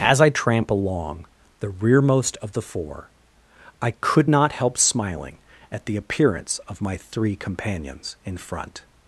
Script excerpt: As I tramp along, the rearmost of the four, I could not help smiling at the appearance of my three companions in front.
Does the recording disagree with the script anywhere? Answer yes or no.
no